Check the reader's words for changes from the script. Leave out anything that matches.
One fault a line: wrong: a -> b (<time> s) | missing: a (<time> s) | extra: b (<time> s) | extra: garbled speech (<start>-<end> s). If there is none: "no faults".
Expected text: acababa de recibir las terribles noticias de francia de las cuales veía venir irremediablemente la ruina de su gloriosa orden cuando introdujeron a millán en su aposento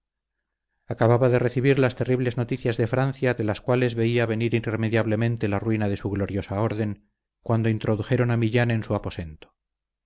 no faults